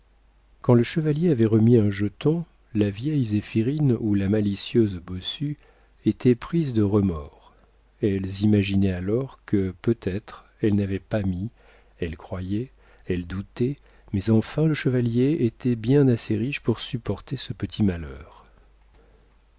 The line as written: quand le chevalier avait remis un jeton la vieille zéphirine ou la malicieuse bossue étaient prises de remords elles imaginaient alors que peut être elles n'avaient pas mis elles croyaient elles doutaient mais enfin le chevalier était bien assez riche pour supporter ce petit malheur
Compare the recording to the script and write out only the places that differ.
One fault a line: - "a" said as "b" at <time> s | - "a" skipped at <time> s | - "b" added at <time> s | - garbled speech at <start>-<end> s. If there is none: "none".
none